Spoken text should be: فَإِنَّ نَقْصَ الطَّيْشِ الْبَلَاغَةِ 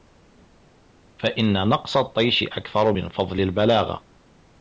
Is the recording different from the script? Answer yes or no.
yes